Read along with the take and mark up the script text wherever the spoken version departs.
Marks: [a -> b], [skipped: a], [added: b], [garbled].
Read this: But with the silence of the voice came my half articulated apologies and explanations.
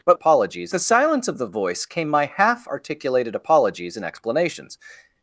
But [with -> apologies] the silence of the voice came my half articulated apologies and explanations.